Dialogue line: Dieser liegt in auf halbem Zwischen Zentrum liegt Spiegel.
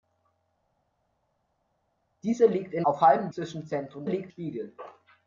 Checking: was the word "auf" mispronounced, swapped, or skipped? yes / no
no